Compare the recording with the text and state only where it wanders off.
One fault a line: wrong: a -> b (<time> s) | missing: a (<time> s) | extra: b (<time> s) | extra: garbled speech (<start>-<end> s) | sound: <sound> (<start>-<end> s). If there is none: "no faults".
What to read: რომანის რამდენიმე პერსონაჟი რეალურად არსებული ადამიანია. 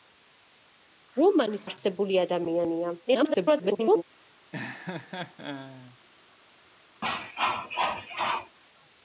missing: რამდენიმე პერსონაჟი რეალურად (1.7 s)
extra: garbled speech (3.1-4.0 s)
sound: laugh (4.5-6.0 s)
sound: cough (7.0-8.6 s)